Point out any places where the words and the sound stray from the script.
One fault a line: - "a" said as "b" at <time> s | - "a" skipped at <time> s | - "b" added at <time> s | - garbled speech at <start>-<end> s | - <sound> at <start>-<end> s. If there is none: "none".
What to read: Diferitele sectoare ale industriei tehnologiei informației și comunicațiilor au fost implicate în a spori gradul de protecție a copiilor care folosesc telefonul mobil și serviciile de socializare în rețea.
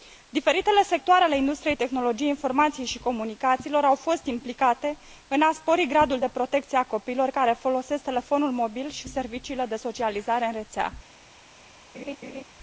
- laugh at 11.9-12.4 s